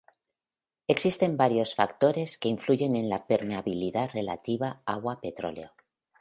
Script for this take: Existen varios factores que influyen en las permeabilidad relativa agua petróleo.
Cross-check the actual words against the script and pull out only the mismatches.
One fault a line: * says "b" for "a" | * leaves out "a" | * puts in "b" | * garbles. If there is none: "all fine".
* says "la" for "las"